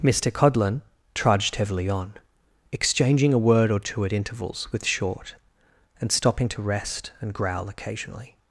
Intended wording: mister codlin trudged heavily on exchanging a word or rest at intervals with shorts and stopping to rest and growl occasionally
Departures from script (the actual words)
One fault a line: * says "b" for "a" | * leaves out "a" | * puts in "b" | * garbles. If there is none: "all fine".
* says "two" for "rest"
* says "short" for "shorts"